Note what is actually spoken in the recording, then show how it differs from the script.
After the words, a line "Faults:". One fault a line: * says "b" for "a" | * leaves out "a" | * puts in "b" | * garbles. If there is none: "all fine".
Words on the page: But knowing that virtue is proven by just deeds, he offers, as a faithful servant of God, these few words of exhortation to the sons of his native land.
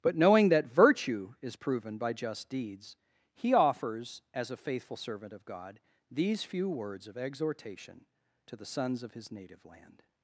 But knowing that virtue is proven by just deeds, he offers, as a faithful servant of God, these few words of exhortation to the sons of his native land.
Faults:
all fine